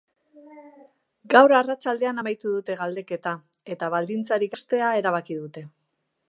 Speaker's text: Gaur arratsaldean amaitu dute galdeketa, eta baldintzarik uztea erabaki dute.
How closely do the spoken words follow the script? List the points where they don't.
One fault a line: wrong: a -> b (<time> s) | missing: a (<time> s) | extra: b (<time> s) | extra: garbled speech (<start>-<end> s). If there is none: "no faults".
no faults